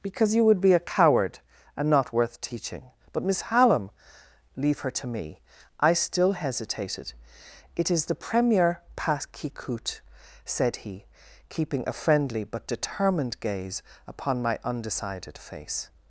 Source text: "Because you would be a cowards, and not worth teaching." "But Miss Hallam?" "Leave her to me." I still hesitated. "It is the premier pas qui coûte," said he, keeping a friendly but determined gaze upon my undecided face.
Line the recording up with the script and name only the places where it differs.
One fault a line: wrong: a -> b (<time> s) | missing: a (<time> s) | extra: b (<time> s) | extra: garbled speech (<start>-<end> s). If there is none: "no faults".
wrong: cowards -> coward (0.8 s)